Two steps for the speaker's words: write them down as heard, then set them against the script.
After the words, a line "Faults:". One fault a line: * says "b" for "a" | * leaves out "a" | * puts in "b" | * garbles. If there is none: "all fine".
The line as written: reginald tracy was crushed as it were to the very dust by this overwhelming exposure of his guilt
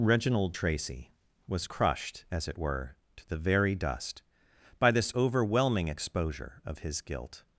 reginald tracy was crushed as it were to the very dust by this overwhelming exposure of his guilt
Faults:
all fine